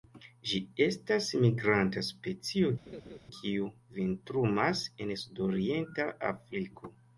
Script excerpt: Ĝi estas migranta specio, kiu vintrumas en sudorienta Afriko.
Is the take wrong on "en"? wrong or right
right